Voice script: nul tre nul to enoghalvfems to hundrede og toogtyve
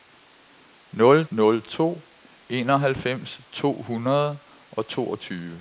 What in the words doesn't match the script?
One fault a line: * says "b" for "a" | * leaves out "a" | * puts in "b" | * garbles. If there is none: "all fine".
* leaves out "tre"